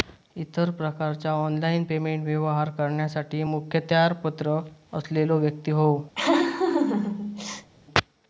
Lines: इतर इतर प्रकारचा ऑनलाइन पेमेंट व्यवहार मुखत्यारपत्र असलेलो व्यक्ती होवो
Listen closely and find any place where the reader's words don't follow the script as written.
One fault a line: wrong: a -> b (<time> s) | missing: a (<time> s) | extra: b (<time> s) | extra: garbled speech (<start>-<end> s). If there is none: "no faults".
missing: इतर (0.7 s)
extra: करण्यासाठी (2.8 s)